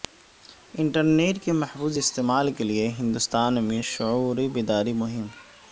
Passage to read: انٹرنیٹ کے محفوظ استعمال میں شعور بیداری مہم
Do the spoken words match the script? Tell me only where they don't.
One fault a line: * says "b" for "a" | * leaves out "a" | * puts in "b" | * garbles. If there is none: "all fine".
* puts in "کے لیے ہندوستان"